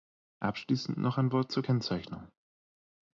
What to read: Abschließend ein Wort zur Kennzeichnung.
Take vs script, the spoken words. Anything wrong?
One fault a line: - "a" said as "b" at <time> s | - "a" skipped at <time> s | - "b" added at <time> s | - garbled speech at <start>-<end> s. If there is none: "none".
- "noch" added at 1.0 s